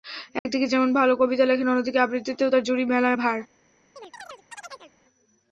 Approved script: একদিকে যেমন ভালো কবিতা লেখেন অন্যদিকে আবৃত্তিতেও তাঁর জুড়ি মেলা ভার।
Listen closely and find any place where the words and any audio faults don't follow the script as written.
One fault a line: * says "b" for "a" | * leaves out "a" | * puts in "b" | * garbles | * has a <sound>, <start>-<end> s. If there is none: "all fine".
* has a dropout, 0.4-0.5 s
* has a chirp, 4.0-4.9 s